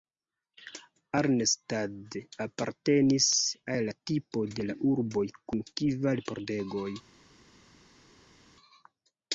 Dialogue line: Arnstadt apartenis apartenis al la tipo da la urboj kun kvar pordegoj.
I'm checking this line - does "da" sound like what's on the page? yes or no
no